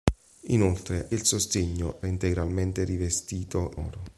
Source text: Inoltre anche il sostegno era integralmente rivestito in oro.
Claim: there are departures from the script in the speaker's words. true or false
true